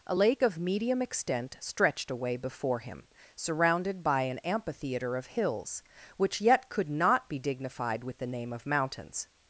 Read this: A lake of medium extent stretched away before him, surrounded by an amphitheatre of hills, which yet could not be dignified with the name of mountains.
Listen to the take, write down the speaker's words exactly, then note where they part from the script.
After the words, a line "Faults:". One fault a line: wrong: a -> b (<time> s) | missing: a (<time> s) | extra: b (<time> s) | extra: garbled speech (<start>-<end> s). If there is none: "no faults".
A lake of medium extent stretched away before him, surrounded by an amphitheatre of hills, which yet could not be dignified with the name of mountains.
Faults:
no faults